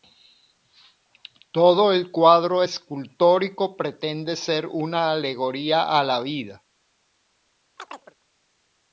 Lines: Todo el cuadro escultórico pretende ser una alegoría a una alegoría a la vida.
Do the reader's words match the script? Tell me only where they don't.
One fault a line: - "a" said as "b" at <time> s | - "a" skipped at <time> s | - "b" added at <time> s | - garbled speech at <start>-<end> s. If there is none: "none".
- "una alegoría a" skipped at 6.0 s